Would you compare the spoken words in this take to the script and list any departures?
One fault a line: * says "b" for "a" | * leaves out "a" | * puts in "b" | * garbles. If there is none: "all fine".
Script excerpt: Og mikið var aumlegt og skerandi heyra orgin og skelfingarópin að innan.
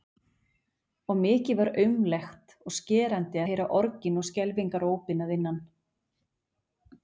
all fine